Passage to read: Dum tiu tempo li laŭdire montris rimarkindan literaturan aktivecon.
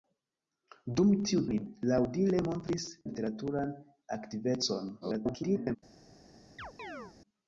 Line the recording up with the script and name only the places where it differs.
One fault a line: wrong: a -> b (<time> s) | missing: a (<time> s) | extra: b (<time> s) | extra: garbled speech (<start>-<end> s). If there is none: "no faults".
missing: tempo (1.4 s)
missing: rimarkindan (2.8 s)
extra: garbled speech (5.0-5.8 s)